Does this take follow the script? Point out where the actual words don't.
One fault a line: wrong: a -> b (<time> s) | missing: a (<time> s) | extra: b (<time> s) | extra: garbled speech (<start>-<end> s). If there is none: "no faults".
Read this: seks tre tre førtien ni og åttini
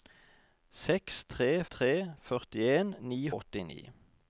no faults